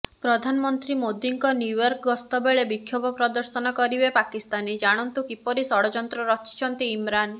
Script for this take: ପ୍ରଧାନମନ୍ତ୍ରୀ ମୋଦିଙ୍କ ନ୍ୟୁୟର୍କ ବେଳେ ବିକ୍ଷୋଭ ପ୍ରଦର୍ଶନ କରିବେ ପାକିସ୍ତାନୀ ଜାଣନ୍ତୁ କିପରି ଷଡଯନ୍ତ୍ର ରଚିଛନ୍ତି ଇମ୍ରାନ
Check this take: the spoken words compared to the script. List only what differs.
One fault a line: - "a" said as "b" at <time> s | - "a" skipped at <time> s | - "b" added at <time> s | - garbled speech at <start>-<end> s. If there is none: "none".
- "ଗସ୍ତ" added at 2.1 s